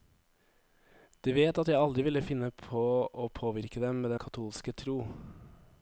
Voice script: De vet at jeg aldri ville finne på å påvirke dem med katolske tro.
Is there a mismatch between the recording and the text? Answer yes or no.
no